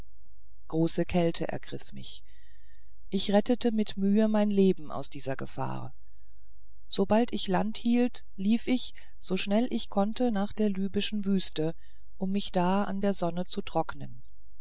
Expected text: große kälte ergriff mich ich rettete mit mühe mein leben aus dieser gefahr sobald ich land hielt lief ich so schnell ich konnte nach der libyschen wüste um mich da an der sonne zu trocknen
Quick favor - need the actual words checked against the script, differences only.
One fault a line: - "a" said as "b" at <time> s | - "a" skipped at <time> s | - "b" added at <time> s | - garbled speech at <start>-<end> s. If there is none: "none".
none